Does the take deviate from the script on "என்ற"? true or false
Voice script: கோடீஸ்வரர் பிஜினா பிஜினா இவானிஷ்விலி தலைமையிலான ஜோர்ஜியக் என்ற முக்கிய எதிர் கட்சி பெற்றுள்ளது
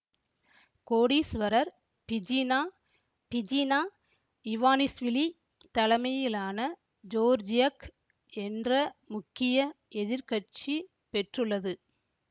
false